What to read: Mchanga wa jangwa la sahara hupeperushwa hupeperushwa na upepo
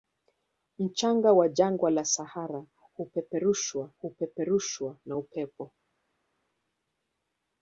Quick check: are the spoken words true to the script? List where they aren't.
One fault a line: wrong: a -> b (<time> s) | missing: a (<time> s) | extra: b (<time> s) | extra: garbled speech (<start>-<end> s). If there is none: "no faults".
no faults